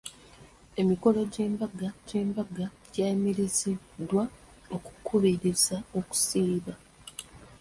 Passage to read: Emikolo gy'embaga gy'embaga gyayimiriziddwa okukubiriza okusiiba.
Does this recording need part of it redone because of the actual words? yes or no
no